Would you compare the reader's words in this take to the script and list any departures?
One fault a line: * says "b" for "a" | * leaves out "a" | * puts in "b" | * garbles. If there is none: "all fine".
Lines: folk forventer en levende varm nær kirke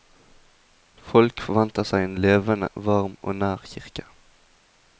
* puts in "seg"
* puts in "og"